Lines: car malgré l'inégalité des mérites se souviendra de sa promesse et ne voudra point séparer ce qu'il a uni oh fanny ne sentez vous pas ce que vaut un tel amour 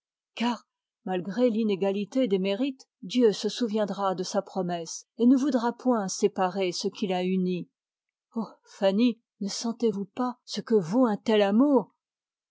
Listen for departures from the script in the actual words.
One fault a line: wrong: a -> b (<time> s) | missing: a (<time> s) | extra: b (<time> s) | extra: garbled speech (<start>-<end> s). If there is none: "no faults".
extra: dieu (3.0 s)